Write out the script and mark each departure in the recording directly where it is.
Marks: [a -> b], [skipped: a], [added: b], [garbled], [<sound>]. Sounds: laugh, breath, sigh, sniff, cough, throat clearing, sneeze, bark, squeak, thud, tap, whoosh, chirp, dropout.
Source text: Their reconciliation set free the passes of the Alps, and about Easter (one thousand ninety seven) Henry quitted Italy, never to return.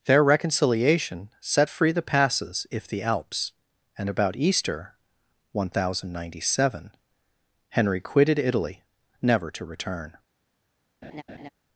Their reconciliation set free the passes [of -> if] the Alps, and about Easter (one thousand ninety seven) Henry quitted Italy, never to return. [laugh]